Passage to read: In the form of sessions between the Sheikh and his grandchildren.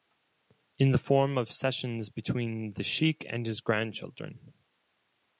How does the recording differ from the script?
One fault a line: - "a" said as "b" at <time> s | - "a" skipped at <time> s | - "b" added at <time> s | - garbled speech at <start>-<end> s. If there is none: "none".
none